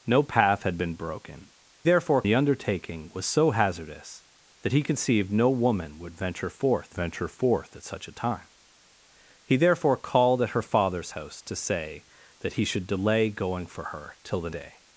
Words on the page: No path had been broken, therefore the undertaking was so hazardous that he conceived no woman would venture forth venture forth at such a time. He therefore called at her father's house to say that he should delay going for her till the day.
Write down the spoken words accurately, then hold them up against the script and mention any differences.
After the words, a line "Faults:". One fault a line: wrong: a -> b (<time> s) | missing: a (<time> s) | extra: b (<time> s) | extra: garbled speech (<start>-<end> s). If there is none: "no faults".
No path had been broken, therefore the undertaking was so hazardous that he conceived no woman would venture forth venture forth at such a time. He therefore called at her father's house to say that he should delay going for her till the day.
Faults:
no faults